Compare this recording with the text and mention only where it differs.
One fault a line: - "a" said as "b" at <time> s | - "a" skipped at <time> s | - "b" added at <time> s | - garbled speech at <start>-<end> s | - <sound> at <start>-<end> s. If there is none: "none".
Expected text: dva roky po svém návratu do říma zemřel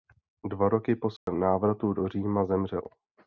- dropout at 1.2-1.3 s